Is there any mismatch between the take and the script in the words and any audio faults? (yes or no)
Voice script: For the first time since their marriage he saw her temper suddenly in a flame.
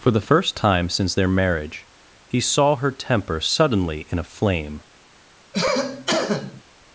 yes